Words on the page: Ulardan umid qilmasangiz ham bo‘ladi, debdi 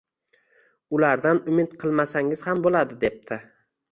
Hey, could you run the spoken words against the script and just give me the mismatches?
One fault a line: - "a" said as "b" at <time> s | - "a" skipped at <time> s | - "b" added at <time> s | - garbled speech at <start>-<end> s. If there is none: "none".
none